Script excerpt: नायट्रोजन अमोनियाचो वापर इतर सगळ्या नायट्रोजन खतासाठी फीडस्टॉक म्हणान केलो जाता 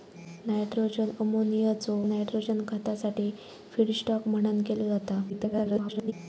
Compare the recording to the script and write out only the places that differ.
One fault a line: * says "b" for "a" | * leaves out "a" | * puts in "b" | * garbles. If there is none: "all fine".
* leaves out "वापर इतर सगळ्या"
* garbles